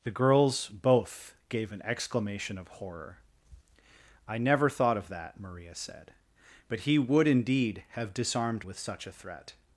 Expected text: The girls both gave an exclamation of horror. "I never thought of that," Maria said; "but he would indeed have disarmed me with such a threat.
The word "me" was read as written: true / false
false